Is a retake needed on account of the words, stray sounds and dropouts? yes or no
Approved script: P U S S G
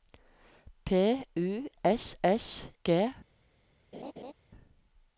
yes